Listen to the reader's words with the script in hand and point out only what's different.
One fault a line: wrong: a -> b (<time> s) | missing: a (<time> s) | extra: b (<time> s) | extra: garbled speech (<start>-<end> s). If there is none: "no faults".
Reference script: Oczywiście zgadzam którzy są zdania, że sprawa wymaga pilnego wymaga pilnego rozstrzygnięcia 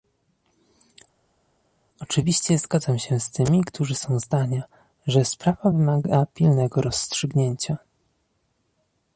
extra: się z tymi (3.0 s)
missing: wymaga pilnego (6.8 s)